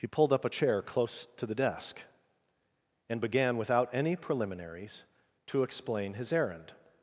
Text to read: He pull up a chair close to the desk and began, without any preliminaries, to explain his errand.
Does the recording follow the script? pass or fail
fail